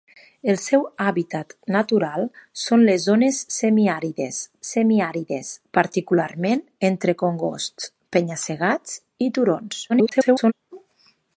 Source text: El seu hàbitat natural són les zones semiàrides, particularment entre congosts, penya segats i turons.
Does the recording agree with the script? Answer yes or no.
no